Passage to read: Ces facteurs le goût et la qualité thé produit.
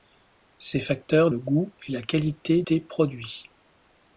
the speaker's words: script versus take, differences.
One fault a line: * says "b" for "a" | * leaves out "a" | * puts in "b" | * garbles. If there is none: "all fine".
all fine